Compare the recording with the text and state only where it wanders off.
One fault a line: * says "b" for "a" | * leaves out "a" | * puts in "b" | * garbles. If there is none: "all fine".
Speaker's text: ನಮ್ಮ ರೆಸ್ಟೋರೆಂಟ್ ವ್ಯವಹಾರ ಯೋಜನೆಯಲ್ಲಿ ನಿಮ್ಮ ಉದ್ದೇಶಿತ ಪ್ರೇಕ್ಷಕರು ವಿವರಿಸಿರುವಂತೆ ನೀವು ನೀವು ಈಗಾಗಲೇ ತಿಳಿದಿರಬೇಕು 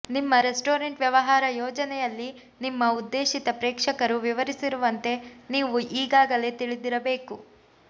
* says "ನಿಮ್ಮ" for "ನಮ್ಮ"
* leaves out "ನೀವು"